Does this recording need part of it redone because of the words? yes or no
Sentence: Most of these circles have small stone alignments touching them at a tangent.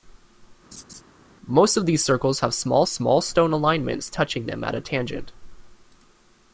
yes